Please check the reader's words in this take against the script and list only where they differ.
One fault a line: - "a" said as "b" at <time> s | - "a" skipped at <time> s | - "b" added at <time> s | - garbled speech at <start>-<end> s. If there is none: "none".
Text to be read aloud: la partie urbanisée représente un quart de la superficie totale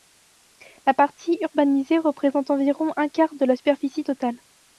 - "environ" added at 2.5 s